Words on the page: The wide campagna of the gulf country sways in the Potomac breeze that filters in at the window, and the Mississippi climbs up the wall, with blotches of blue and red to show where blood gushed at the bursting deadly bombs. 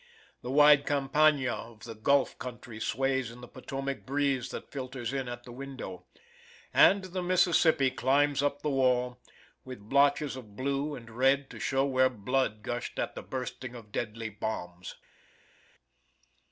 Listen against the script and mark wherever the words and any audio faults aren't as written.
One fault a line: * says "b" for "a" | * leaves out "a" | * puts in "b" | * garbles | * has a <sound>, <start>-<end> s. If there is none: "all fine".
* puts in "of"